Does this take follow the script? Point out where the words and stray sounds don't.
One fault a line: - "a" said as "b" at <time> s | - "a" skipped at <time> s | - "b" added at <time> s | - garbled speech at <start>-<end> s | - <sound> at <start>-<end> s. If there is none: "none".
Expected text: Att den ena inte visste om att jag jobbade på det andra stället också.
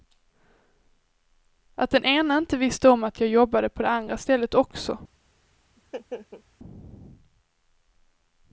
- laugh at 5.8-6.4 s